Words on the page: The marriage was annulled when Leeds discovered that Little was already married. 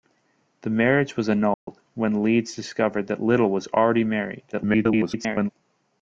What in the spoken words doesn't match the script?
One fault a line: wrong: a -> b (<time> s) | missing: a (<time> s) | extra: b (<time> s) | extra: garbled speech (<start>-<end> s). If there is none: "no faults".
extra: garbled speech (4.5-5.5 s)